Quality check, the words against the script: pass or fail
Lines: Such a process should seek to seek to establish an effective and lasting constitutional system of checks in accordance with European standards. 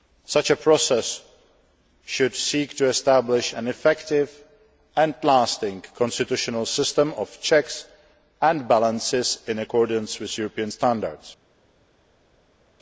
fail